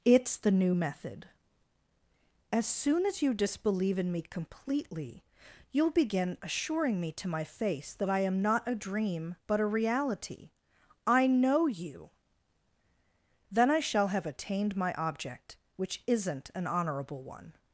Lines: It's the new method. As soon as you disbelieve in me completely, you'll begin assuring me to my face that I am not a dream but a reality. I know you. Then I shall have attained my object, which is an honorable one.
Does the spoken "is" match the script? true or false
false